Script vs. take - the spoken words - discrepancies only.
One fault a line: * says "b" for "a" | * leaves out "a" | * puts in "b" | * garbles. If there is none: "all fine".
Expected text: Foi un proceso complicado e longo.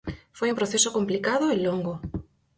all fine